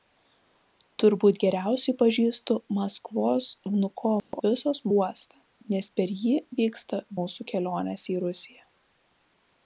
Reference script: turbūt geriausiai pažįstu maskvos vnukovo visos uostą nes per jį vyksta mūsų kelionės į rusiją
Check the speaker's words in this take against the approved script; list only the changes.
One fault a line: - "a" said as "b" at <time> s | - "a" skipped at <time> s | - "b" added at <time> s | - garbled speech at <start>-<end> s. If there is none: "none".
none